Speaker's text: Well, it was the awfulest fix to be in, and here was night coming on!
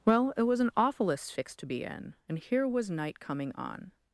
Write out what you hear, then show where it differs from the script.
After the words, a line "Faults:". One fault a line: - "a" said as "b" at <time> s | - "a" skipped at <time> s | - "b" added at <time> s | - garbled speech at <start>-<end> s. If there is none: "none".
Well, it was an awfulest fix to be in, and here was night coming on!
Faults:
- "the" said as "an" at 0.6 s